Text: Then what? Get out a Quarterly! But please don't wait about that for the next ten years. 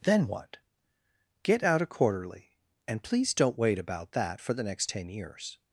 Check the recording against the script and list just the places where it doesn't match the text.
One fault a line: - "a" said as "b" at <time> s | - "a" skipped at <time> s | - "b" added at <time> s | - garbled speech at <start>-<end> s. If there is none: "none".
- "But" said as "And" at 2.9 s